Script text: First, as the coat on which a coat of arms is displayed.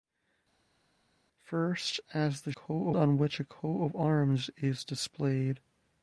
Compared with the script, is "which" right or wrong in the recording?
right